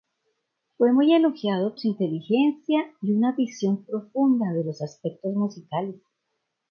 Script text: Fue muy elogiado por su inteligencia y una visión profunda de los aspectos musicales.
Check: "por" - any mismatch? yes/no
yes